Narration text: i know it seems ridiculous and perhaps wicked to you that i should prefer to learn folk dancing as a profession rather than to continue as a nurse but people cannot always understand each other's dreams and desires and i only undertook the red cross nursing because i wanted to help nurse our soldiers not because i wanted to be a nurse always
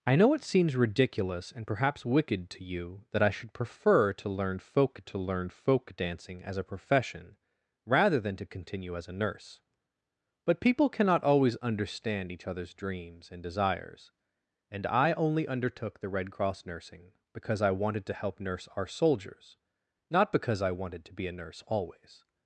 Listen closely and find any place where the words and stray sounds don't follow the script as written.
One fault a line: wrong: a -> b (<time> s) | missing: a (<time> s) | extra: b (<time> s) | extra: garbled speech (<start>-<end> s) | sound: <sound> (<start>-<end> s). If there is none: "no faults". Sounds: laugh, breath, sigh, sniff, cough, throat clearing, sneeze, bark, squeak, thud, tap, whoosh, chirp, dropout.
extra: to learn folk (5.0 s)